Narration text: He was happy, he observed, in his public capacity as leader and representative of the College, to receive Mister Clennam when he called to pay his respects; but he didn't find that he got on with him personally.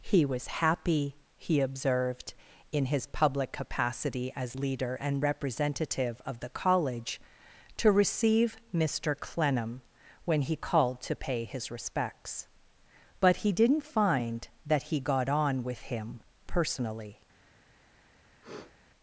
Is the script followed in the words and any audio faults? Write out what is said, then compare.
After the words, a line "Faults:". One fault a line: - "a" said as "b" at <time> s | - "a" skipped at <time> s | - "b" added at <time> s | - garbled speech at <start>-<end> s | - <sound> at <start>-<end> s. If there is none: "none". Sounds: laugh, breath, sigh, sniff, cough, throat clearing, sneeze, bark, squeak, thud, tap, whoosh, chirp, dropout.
He was happy, he observed, in his public capacity as leader and representative of the College, to receive Mister Clennam when he called to pay his respects; but he didn't find that he got on with him personally.
Faults:
- sniff at 18.4-18.8 s